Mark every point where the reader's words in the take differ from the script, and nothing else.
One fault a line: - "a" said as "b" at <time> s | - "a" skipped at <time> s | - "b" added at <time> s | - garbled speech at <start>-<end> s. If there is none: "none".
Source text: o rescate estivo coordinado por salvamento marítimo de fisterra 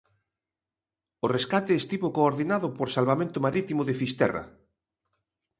none